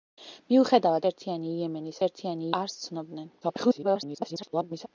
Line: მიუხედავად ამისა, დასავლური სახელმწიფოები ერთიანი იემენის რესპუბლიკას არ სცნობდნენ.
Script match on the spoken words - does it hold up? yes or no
no